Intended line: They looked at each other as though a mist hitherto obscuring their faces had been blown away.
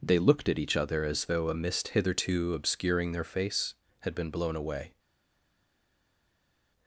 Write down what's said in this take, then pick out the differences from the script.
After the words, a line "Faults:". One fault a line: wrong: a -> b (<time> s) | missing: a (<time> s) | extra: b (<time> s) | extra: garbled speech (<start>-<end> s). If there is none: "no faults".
They looked at each other as though a mist hitherto obscuring their face had been blown away.
Faults:
wrong: faces -> face (3.2 s)